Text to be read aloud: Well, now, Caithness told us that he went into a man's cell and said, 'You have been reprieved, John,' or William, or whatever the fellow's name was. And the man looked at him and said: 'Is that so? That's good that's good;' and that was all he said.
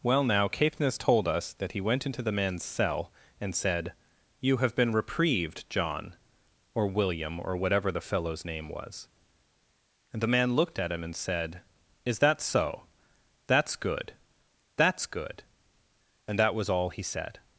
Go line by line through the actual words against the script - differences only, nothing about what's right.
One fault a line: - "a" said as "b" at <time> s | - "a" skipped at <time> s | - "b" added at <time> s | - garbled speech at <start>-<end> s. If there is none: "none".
- "a" said as "the" at 2.2 s